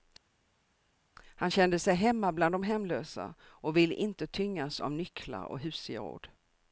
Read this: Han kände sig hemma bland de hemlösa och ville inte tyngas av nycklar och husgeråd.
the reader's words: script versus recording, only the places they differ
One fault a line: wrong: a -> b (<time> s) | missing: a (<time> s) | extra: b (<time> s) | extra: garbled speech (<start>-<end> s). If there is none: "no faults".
no faults